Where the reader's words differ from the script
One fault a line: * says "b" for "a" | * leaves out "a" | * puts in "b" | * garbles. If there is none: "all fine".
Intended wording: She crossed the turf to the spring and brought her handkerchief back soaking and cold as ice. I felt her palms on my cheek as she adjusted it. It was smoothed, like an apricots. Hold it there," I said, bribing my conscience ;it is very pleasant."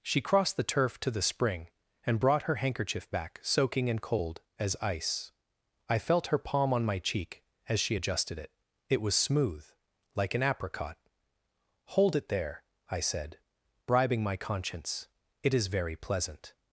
* says "palm" for "palms"
* says "smooth" for "smoothed"
* says "apricot" for "apricots"